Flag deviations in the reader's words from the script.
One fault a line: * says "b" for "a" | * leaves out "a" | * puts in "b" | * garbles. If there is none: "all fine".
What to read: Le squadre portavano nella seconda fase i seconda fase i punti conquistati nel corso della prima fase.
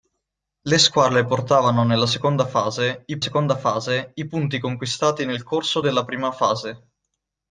all fine